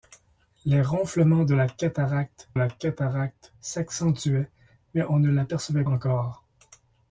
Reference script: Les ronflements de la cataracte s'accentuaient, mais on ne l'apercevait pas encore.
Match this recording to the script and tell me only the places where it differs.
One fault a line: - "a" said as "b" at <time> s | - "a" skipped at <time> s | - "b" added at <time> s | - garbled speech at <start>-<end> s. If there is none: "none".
- "la cataracte" added at 2.5 s
- "pas" skipped at 5.8 s